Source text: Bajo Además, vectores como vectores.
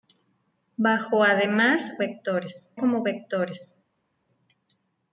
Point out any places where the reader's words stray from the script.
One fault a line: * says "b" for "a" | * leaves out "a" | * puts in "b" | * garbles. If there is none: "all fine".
all fine